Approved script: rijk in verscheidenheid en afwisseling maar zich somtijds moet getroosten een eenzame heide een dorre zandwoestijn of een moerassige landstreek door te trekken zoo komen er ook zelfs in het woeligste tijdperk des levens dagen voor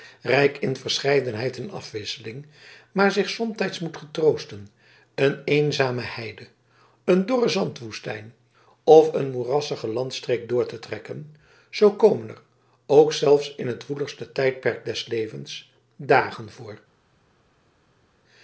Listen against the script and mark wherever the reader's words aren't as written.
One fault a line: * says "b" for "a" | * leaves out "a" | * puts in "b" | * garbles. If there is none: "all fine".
all fine